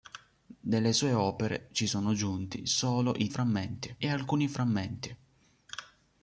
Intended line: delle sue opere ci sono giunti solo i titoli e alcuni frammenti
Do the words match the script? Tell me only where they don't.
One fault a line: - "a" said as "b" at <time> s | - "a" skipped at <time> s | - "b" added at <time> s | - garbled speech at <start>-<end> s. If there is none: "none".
- "titoli" said as "frammenti" at 3.3 s